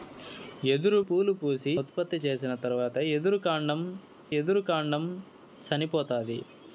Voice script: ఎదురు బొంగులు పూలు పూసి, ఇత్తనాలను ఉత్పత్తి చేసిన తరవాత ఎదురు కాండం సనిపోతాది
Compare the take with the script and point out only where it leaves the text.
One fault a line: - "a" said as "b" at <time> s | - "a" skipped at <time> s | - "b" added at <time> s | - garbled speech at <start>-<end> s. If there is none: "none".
- "బొంగులు" skipped at 1.0 s
- "ఇత్తనాలను" skipped at 1.7 s
- "ఎదురు కాండం" added at 4.4 s